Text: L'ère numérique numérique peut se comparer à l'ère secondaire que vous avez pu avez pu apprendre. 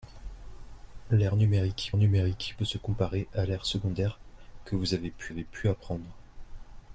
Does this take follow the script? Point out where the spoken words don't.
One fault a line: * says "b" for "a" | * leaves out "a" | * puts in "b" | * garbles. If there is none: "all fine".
all fine